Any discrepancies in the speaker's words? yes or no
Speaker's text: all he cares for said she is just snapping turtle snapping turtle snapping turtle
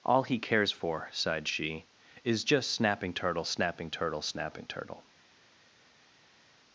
yes